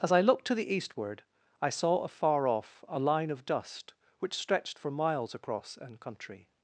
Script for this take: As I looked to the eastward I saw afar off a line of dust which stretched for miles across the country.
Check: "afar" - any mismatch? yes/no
no